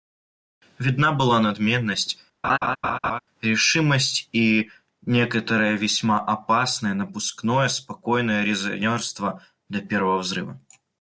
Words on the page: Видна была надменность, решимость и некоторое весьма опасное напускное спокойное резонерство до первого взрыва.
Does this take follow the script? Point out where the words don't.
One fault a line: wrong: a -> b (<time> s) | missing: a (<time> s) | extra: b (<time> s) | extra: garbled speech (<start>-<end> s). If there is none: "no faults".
no faults